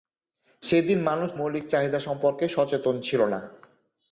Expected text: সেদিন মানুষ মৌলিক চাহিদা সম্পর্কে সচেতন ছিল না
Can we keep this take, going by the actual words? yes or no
yes